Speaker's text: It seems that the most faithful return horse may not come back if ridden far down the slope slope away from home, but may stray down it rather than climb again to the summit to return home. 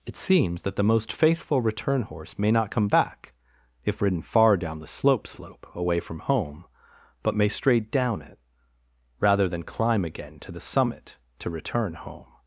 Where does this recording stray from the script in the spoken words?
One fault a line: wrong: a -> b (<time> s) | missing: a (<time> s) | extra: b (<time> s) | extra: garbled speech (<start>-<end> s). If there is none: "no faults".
no faults